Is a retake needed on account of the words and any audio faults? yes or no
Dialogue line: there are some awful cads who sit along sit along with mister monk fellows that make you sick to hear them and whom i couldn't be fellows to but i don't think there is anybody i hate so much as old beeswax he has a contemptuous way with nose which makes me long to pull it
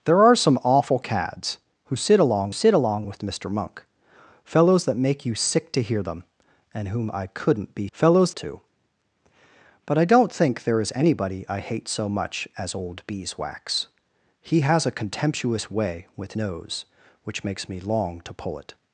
no